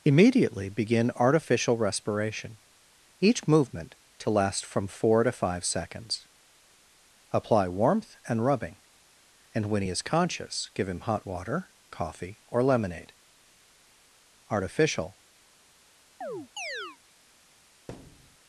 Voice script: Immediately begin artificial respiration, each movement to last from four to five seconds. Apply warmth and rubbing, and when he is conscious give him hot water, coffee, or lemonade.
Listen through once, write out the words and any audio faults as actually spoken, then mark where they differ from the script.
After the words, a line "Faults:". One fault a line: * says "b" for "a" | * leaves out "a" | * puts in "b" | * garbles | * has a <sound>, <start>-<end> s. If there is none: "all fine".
Immediately begin artificial respiration, each movement to last from four to five seconds. Apply warmth and rubbing, and when he is conscious give him hot water, coffee, or lemonade. Artificial
Faults:
* puts in "Artificial"
* has a chirp, 16.2-17.0 s
* has a thud, 17.9-18.4 s